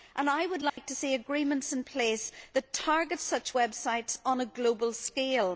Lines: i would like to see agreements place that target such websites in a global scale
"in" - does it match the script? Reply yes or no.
no